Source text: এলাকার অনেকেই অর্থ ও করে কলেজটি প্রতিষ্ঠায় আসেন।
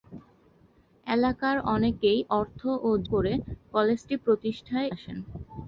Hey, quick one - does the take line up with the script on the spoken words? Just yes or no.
yes